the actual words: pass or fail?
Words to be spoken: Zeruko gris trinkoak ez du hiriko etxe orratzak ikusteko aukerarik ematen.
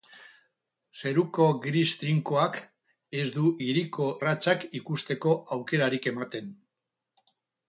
fail